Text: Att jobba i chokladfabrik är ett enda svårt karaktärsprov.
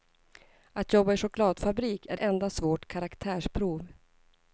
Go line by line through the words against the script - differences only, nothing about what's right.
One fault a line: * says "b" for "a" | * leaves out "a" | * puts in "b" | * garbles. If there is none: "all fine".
* leaves out "ett"